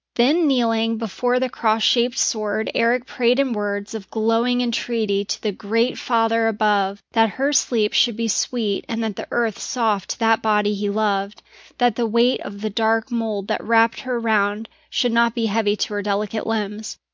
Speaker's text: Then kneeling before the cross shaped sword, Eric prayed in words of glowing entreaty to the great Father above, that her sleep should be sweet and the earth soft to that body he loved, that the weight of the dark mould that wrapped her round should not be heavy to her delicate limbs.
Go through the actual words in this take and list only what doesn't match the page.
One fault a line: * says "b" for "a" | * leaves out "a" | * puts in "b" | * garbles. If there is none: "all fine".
all fine